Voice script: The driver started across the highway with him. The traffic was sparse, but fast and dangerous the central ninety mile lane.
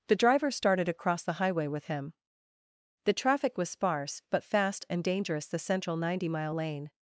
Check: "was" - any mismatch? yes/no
no